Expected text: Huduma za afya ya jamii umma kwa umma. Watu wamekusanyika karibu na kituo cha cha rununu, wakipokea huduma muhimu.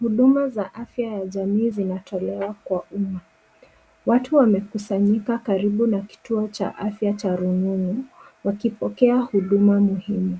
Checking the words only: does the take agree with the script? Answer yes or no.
no